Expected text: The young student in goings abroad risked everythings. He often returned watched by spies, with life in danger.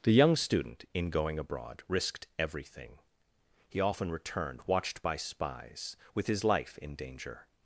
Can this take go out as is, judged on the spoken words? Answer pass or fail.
fail